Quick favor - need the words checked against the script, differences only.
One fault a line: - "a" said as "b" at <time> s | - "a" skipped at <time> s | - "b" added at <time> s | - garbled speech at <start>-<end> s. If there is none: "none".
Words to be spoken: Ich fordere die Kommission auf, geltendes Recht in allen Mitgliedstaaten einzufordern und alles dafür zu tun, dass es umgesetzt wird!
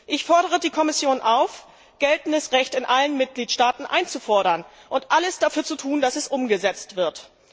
none